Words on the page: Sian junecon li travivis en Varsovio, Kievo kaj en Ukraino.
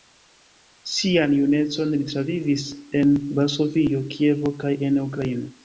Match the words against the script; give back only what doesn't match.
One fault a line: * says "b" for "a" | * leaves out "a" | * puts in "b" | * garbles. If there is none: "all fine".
all fine